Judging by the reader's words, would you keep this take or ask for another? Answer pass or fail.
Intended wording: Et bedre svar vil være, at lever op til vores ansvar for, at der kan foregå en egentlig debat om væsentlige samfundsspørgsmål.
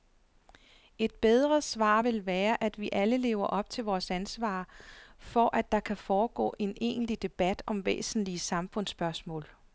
fail